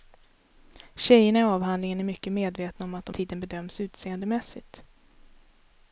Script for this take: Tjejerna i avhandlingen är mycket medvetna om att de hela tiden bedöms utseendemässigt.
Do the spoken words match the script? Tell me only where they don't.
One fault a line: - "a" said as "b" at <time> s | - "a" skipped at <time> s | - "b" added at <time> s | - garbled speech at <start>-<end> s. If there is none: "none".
- "hela" skipped at 3.1 s